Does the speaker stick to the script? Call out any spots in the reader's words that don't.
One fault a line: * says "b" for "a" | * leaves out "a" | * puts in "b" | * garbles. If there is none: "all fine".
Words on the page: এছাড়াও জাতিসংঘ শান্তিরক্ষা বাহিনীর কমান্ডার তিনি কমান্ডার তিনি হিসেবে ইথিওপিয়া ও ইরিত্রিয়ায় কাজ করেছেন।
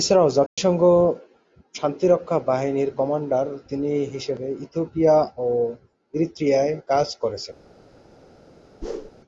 * leaves out "কমান্ডার তিনি"